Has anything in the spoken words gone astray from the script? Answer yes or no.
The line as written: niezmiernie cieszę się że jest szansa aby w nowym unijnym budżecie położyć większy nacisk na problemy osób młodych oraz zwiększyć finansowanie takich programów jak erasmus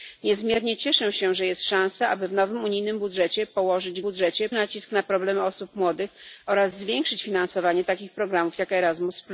yes